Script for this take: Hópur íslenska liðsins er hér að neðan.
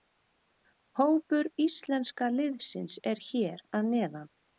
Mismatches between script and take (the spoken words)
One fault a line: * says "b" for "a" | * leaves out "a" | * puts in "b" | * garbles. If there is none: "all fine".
all fine